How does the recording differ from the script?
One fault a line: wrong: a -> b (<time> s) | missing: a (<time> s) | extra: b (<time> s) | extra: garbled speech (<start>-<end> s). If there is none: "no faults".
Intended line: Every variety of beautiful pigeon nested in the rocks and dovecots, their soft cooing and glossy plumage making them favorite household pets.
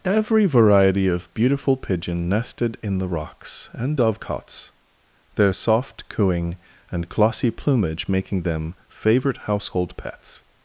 no faults